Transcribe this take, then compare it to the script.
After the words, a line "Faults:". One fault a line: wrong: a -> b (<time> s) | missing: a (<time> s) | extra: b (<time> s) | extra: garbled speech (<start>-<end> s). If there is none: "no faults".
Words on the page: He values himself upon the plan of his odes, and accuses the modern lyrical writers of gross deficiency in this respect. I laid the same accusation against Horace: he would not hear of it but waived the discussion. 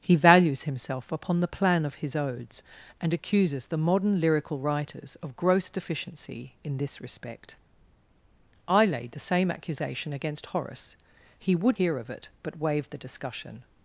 He values himself upon the plan of his odes, and accuses the modern lyrical writers of gross deficiency in this respect. I laid the same accusation against Horace: he would hear of it but waived the discussion.
Faults:
missing: not (11.8 s)